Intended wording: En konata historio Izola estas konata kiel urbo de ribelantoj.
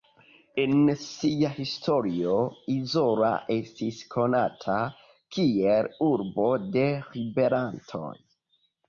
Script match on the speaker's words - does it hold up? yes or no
no